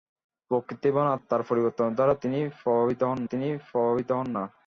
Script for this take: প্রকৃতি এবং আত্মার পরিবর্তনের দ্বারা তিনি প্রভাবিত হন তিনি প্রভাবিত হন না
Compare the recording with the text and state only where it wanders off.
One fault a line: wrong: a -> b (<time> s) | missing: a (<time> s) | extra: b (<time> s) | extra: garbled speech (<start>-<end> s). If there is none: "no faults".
no faults